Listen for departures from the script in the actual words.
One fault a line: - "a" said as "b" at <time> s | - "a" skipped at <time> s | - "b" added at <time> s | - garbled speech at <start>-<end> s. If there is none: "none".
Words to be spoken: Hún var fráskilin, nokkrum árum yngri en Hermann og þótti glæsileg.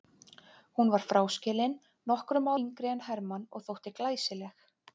- "árum" skipped at 2.5 s